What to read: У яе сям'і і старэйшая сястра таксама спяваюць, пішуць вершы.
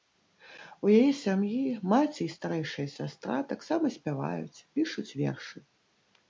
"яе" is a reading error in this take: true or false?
false